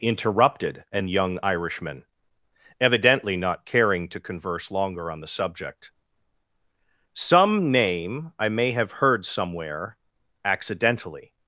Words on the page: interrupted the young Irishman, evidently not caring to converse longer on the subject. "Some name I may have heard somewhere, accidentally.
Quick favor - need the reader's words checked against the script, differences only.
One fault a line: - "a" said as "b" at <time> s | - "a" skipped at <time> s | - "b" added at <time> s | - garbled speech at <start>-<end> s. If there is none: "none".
- "the" said as "an" at 0.9 s